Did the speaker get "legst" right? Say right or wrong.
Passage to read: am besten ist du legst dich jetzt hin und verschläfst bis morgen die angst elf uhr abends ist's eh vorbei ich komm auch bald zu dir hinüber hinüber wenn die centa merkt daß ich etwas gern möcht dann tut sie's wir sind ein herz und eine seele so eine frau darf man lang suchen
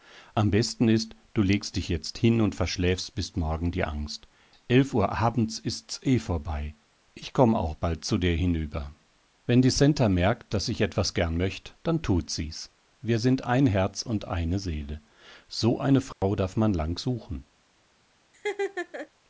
right